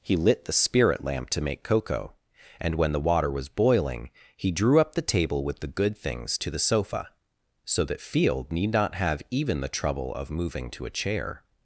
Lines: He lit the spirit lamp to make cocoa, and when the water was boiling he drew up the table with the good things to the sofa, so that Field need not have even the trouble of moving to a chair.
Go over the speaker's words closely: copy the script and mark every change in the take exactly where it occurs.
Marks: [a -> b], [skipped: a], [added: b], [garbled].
He lit the spirit lamp to make cocoa, and when the water was boiling he drew up the table with the good things to the sofa, so that Field need not have even the trouble of moving to a chair.